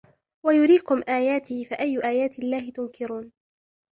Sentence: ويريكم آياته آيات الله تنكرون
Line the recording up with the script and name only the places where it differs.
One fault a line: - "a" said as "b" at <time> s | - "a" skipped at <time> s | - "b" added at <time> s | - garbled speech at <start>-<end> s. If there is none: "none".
- "فأي" added at 1.6 s